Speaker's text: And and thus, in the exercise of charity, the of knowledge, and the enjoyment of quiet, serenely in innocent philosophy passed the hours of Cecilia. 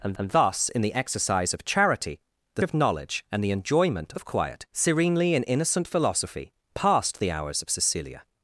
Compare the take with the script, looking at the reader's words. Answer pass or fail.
pass